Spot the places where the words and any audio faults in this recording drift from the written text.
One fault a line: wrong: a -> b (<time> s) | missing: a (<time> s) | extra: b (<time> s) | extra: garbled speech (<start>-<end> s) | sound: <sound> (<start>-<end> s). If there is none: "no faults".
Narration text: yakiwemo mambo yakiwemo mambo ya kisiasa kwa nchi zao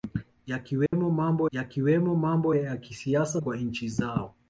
sound: dropout (0.9-0.9 s)